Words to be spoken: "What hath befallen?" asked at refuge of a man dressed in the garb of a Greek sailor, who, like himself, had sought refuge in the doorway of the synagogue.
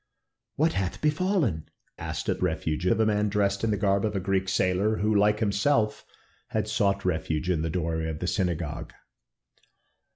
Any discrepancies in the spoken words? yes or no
no